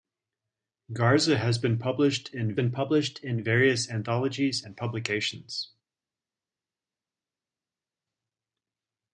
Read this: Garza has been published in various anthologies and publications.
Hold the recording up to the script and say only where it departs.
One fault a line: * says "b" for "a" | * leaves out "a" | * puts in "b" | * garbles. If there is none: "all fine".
* puts in "been published in"